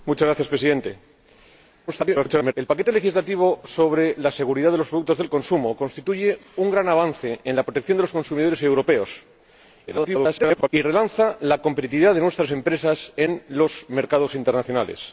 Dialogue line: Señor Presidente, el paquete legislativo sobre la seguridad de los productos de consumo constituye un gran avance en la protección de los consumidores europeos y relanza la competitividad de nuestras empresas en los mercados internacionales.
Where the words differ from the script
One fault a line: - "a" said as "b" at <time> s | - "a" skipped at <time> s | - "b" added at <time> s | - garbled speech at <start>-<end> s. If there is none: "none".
- garbled speech at 1.9-2.5 s
- garbled speech at 9.9-10.7 s